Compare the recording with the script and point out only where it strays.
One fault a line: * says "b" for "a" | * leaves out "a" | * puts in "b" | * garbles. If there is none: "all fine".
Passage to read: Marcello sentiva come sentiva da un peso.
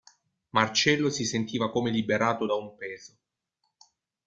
* puts in "si"
* says "liberato" for "sentiva"